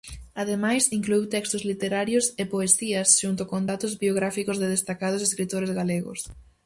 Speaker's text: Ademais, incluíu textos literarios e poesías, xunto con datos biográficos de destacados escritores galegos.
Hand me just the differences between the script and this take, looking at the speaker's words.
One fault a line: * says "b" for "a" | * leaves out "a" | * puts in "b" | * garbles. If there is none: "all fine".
all fine